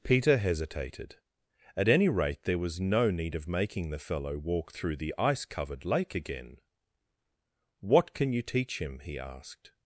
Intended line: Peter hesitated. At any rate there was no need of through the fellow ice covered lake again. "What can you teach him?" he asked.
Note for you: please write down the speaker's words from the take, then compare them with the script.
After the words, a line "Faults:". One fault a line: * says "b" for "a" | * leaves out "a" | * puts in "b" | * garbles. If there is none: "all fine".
Peter hesitated. At any rate there was no need of making the fellow walk through the ice covered lake again. "What can you teach him?" he asked.
Faults:
* says "making" for "through"
* puts in "walk through the"